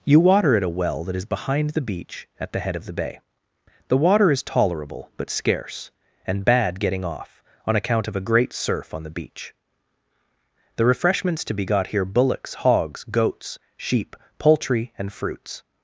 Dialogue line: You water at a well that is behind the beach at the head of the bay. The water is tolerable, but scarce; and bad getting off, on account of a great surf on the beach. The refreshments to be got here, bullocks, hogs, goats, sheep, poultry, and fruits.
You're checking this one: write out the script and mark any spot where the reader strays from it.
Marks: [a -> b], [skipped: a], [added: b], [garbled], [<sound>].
You water at a well that is behind the beach at the head of the bay. The water is tolerable, but scarce; and bad getting off, on account of a great surf on the beach. The refreshments to be got here, bullocks, hogs, goats, sheep, poultry, and fruits.